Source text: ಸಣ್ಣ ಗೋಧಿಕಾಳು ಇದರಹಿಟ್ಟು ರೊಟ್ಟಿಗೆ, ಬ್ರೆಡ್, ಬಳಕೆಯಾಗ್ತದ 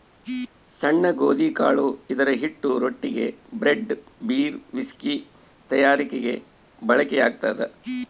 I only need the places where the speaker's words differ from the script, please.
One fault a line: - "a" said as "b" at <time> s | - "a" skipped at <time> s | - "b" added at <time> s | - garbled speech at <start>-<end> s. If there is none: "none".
- "ಬೀರ್ ವಿಸ್ಕಿ ತಯಾರಿಕೆಗೆ" added at 4.3 s